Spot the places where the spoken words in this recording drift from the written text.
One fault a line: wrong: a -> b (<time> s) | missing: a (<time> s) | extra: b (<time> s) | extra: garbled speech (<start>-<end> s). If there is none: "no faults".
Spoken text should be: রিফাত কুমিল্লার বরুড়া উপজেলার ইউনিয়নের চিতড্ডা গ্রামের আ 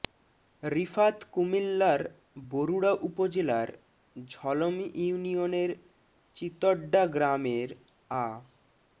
extra: ঝলম (4.2 s)